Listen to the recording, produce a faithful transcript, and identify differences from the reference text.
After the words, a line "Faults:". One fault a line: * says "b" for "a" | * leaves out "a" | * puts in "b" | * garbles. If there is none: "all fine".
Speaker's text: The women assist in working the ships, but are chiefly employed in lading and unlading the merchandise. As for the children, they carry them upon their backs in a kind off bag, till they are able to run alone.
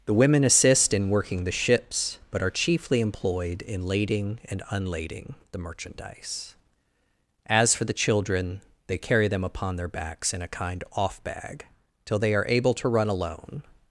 The women assist in working the ships, but are chiefly employed in lading and unlading the merchandise. As for the children, they carry them upon their backs in a kind off bag, till they are able to run alone.
Faults:
all fine